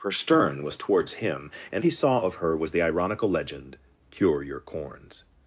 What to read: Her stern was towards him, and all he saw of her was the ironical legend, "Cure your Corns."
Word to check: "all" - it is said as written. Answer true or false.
false